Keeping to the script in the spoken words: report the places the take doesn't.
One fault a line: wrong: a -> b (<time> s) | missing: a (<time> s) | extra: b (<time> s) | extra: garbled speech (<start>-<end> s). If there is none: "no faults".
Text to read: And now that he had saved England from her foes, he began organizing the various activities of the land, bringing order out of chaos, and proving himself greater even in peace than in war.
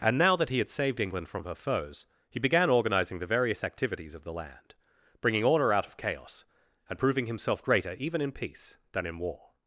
no faults